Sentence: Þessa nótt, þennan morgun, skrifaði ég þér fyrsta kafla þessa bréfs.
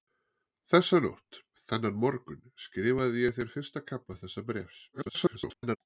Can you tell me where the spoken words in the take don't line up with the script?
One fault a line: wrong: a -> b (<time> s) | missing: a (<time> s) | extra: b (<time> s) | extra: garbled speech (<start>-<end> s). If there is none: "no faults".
extra: garbled speech (4.9-5.8 s)